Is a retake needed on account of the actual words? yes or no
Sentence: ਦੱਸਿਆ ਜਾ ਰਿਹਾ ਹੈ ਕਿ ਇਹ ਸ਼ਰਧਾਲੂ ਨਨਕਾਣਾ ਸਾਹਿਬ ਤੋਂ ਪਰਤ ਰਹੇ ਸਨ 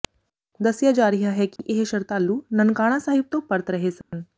no